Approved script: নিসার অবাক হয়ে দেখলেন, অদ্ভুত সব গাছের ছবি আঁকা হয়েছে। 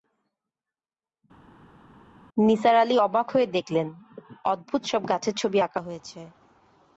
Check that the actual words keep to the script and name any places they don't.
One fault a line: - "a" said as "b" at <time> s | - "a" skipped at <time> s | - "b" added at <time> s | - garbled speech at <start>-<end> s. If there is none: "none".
- "আলি" added at 2.8 s